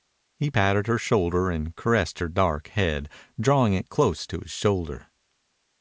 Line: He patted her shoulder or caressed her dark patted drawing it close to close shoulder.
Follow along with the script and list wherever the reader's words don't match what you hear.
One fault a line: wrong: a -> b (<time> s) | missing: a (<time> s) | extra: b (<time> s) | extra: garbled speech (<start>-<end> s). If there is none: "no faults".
wrong: or -> and (1.5 s)
wrong: patted -> head (2.7 s)
wrong: close -> his (4.4 s)